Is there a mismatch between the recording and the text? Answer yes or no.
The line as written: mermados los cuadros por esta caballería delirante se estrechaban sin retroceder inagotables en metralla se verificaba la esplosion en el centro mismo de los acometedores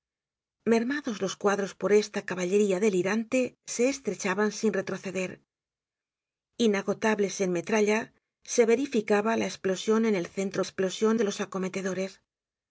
yes